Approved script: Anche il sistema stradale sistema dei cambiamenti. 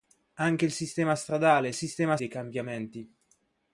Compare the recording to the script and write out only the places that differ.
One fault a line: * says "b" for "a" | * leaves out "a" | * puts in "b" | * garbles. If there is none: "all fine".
all fine